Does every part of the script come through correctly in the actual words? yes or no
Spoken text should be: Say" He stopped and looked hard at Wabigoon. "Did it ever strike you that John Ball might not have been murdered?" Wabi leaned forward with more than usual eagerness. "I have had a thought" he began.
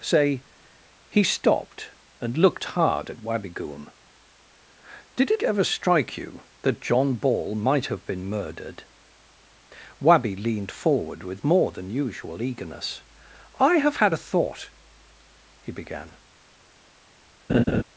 no